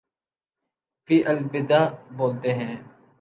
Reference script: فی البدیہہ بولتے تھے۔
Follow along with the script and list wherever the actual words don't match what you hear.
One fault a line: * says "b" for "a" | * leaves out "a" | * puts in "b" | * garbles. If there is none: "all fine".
* says "ہیں" for "تھے"